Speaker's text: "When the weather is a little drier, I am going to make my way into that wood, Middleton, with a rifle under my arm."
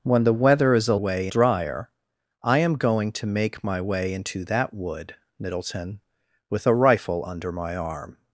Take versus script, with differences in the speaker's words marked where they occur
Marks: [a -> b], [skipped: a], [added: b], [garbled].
"When the weather is a [little -> way] drier, I am going to make my way into that wood, Middleton, with a rifle under my arm."